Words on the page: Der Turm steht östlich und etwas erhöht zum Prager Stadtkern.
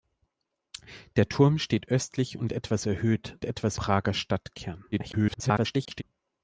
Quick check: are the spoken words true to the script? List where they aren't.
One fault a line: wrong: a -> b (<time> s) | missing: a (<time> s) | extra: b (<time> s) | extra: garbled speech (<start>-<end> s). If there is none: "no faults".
wrong: zum -> etwas (3.4 s)
extra: garbled speech (4.9-6.0 s)